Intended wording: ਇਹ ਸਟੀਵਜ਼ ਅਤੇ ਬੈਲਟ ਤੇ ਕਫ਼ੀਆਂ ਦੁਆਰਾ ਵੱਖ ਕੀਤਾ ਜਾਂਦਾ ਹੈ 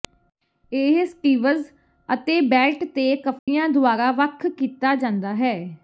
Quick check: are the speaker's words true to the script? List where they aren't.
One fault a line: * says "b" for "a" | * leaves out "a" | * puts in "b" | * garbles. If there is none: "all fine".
all fine